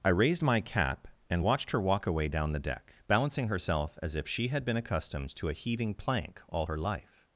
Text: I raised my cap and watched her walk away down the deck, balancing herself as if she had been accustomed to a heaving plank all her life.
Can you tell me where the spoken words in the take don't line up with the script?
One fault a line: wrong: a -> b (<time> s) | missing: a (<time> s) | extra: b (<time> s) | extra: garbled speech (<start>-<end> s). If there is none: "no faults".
no faults